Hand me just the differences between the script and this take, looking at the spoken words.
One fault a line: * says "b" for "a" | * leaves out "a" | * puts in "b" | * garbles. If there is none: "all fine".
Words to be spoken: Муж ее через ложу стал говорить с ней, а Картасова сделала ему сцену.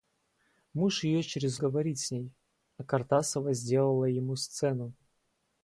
* leaves out "ложу стал"